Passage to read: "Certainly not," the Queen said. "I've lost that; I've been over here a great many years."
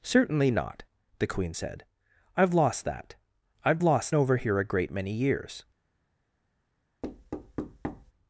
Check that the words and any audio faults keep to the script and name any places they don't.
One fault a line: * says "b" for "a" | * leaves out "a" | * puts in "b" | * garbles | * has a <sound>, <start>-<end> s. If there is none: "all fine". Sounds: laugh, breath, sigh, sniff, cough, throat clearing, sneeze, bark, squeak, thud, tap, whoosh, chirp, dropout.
* says "lost" for "been"
* has a thud, 7.0-8.1 s